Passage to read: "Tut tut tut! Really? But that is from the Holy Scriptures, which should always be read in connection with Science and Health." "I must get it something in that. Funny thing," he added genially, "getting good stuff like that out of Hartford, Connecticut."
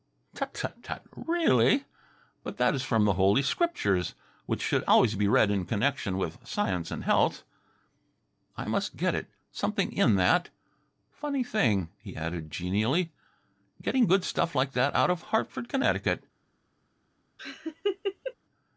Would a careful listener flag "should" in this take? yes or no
no